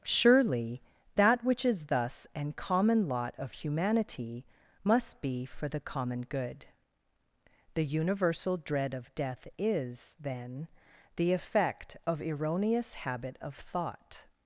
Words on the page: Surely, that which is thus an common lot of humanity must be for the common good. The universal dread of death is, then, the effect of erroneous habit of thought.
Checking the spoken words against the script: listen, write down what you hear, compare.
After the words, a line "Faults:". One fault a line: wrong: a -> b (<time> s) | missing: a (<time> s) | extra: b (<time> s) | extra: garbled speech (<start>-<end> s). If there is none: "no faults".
Surely, that which is thus an common lot of humanity must be for the common good. The universal dread of death is, then, the effect of erroneous habit of thought.
Faults:
no faults